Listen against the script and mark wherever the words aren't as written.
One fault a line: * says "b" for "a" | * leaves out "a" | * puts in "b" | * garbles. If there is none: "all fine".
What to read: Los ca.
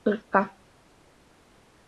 all fine